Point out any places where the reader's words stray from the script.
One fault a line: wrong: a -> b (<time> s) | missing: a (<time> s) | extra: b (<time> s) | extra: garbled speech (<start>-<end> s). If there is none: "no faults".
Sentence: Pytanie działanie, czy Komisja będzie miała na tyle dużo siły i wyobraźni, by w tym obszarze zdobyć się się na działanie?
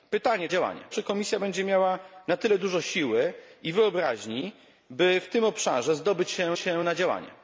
no faults